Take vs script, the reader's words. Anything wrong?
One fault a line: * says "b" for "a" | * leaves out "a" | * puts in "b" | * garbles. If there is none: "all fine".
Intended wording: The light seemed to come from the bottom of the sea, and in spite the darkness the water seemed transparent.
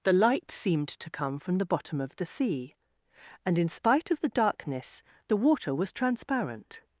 * puts in "of"
* says "was" for "seemed"